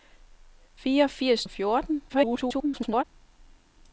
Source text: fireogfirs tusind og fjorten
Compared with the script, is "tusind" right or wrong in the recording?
wrong